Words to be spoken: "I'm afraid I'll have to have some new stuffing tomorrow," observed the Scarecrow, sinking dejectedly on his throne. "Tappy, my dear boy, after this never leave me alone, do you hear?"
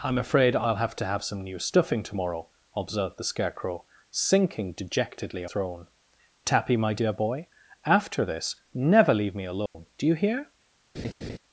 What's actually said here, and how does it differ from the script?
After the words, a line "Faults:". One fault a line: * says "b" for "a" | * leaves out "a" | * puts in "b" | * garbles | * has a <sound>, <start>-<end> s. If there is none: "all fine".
"I'm afraid I'll have to have some new stuffing tomorrow," observed the Scarecrow, sinking dejectedly throne. "Tappy, my dear boy, after this never leave me alone, do you hear?"
Faults:
* leaves out "on his"
* has a dropout, 9.7-9.7 s
* has a laugh, 10.9-11.4 s